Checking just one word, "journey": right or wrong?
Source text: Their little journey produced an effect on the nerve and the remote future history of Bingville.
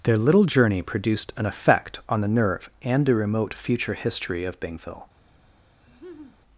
right